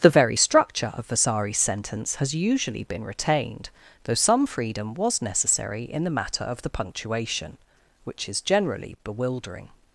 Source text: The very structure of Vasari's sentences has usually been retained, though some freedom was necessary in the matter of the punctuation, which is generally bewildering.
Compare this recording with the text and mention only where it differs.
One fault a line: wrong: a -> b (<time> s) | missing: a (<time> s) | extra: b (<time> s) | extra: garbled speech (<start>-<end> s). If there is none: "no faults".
wrong: sentences -> sentence (1.6 s)